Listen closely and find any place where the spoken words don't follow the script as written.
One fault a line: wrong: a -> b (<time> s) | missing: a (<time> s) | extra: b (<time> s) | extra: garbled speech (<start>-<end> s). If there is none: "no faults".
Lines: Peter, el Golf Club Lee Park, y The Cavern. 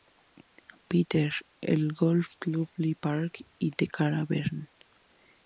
no faults